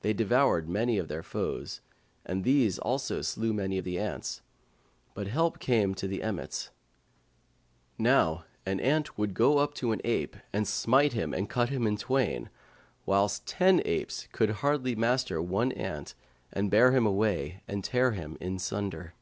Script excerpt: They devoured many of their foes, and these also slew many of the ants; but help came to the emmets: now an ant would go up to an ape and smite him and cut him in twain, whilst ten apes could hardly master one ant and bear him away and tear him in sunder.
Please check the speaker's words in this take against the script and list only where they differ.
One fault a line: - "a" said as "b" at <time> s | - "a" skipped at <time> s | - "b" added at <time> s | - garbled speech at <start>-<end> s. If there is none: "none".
none